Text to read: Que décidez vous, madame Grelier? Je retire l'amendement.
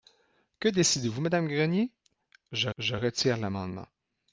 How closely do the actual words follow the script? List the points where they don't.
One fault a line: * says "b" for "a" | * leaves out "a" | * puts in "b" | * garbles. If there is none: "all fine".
* puts in "je"